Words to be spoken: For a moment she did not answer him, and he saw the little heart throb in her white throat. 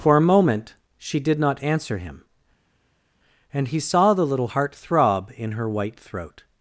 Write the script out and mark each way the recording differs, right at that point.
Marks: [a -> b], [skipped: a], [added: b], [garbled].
For a moment she did not answer him, and he saw the little heart throb in her white throat.